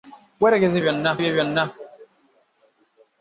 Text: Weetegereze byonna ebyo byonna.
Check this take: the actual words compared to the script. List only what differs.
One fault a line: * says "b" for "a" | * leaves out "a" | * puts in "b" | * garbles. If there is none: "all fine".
all fine